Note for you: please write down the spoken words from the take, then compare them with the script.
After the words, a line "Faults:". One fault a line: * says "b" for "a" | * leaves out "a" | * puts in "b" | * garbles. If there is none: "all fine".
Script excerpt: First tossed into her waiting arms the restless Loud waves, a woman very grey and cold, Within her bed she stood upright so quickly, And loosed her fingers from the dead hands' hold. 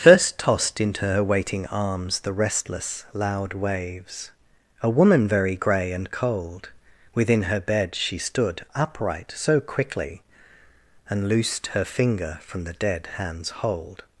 First tossed into her waiting arms the restless Loud waves, a woman very grey and cold, Within her bed she stood upright so quickly, And loosed her finger from the dead hands' hold.
Faults:
* says "finger" for "fingers"